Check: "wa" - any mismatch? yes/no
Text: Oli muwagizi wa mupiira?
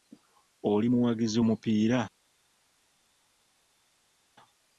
yes